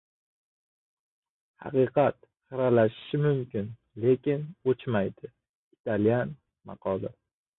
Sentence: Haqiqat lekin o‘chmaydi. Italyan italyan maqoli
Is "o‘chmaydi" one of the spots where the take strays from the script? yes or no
no